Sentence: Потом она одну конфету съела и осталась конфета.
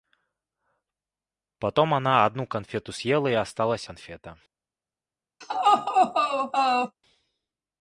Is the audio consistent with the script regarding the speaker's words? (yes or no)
yes